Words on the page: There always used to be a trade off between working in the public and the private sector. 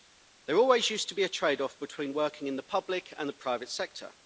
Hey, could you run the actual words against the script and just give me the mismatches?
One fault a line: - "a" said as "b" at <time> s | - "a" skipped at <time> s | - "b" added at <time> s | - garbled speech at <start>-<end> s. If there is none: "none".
none